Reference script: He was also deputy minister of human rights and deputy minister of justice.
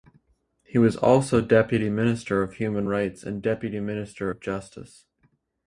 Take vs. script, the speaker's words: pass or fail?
pass